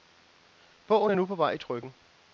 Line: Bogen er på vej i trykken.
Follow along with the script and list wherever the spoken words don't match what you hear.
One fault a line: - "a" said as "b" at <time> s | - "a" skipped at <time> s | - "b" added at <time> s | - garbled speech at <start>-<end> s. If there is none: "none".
- "nu" added at 1.1 s